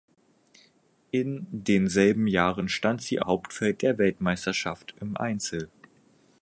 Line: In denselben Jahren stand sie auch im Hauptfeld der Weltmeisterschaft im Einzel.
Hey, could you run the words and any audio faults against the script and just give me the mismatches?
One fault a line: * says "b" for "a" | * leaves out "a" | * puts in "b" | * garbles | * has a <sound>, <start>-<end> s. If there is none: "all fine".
* leaves out "auch im"